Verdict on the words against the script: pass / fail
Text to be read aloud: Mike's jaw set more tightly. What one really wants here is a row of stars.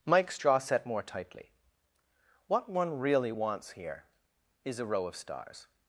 pass